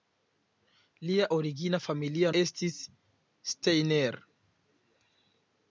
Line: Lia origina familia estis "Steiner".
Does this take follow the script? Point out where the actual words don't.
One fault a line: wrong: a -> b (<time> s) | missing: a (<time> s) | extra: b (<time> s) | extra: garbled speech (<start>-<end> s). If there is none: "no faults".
no faults